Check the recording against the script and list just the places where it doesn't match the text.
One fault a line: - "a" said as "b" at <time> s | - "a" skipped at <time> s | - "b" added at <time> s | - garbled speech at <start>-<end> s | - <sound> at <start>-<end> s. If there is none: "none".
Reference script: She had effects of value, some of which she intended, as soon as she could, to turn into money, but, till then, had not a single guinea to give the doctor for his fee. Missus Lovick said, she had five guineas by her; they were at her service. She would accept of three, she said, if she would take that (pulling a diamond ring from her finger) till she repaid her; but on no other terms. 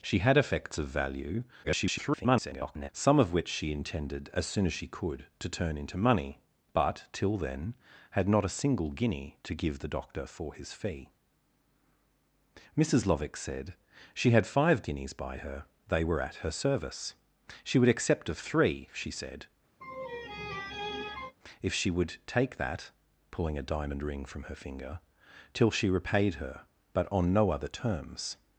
- garbled speech at 1.6-2.9 s
- laugh at 19.8-21.4 s